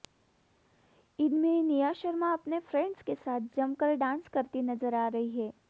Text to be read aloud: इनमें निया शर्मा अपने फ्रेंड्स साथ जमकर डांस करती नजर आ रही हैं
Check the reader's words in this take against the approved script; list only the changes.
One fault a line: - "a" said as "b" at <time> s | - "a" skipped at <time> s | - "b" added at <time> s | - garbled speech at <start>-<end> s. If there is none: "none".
- "के" added at 3.0 s